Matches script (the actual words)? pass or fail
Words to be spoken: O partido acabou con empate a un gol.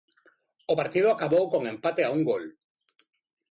pass